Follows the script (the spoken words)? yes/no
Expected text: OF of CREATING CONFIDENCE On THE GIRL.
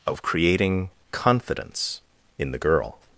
no